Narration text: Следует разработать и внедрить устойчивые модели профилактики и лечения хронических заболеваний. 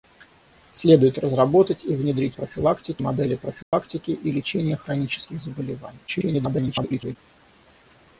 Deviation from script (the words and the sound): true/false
true